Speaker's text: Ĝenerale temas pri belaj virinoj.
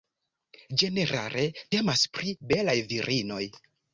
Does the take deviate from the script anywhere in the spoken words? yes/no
no